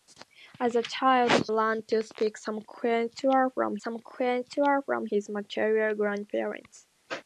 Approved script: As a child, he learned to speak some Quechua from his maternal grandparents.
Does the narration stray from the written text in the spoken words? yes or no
yes